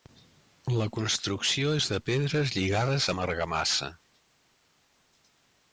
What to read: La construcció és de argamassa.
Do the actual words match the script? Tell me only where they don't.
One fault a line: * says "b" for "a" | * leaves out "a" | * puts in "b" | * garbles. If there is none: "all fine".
* puts in "pedres lligades amb"